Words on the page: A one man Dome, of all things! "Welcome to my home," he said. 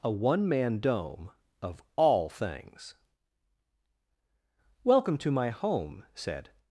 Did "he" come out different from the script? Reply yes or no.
yes